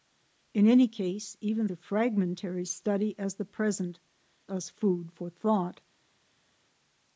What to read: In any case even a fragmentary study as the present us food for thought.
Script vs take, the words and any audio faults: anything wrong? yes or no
no